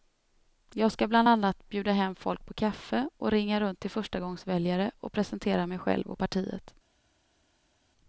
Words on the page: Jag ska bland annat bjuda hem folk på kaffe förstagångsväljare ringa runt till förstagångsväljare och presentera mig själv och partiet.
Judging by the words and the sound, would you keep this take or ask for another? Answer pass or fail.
fail